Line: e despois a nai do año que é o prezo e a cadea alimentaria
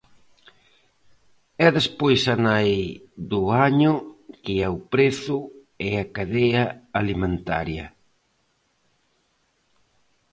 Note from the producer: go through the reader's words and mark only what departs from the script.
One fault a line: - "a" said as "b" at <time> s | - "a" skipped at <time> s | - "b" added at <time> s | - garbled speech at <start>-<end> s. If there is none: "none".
none